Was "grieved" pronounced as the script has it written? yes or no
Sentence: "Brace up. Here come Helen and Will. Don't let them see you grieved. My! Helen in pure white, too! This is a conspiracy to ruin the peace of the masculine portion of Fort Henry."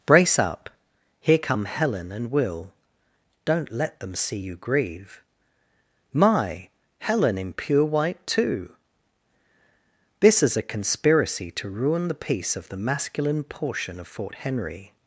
no